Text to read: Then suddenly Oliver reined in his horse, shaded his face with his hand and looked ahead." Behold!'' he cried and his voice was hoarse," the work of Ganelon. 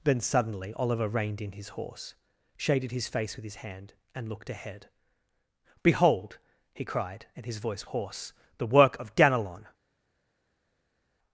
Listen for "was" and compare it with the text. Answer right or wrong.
wrong